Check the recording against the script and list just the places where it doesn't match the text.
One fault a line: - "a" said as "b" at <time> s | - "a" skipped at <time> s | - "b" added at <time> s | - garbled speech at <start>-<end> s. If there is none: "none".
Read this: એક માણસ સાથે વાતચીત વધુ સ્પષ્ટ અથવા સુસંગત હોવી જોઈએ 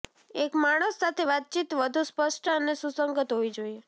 - "અથવા" said as "અને" at 2.5 s